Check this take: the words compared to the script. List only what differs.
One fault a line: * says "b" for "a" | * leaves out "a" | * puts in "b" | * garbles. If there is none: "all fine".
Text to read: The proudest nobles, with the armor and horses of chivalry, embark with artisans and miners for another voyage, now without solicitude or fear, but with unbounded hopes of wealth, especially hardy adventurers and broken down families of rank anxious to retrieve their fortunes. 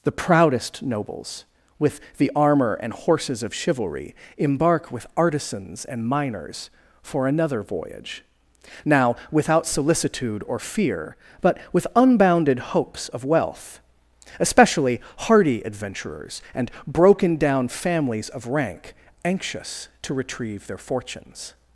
all fine